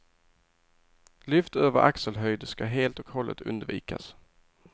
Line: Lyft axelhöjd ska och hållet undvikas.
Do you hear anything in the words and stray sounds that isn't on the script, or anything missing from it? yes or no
yes